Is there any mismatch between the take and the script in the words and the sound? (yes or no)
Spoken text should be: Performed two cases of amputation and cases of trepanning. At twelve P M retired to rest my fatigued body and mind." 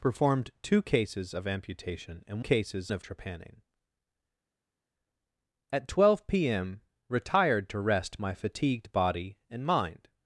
no